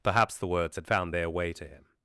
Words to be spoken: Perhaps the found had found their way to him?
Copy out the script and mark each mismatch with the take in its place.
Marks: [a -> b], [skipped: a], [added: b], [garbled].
Perhaps the [found -> words] had found their way to him?